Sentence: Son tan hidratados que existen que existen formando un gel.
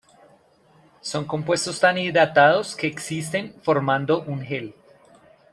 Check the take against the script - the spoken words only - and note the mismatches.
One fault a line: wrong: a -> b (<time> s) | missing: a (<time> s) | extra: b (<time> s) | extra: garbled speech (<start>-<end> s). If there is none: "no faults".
extra: compuestos (1.2 s)
missing: que existen (3.5 s)